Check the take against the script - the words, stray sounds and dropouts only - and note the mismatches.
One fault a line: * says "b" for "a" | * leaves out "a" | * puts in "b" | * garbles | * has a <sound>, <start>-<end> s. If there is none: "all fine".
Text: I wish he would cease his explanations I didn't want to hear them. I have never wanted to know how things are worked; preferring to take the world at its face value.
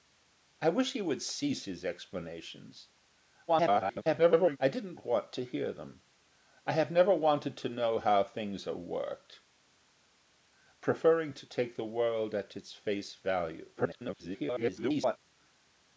* garbles
* garbles